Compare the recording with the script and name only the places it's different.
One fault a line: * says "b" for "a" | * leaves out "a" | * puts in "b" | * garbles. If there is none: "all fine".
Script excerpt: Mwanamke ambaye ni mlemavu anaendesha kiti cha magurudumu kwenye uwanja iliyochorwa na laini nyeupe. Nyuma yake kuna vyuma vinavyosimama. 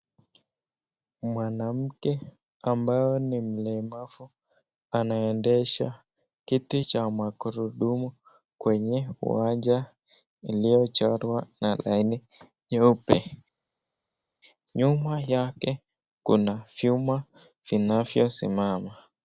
all fine